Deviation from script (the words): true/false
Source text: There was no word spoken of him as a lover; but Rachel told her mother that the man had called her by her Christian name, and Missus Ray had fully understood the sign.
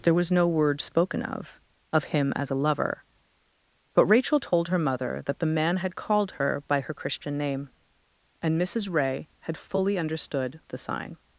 true